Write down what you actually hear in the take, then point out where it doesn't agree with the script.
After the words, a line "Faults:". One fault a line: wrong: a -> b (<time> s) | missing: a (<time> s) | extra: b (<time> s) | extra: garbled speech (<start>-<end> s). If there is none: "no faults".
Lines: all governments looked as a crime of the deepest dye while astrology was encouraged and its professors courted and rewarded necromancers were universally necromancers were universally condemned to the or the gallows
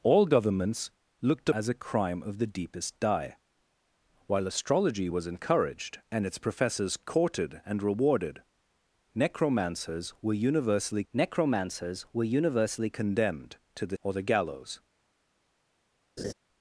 all governments looked as a crime of the deepest dye while astrology was encouraged and its professors courted and rewarded necromancers were universally necromancers were universally condemned to the or the gallows
Faults:
no faults